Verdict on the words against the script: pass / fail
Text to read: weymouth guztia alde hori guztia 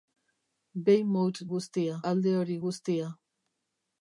pass